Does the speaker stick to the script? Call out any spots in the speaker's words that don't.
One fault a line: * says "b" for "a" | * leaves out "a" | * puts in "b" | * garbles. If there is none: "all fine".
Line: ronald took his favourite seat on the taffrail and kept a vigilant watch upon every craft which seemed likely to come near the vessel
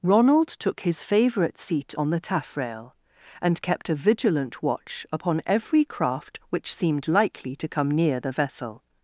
all fine